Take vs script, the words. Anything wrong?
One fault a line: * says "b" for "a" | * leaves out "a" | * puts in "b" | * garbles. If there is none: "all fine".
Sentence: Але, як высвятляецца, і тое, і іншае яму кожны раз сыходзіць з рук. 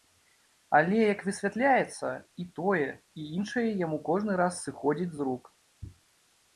all fine